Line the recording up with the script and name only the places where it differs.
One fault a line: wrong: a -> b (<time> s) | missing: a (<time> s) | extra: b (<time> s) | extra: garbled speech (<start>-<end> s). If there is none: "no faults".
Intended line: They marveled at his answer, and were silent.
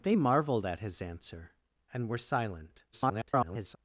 extra: garbled speech (2.9-3.8 s)